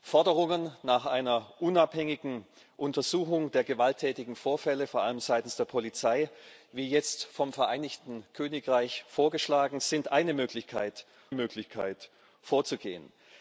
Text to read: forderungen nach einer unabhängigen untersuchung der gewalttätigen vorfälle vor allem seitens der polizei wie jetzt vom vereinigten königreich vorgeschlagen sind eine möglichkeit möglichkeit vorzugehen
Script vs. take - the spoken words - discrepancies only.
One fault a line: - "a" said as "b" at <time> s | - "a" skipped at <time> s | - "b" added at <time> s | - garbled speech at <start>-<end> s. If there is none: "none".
none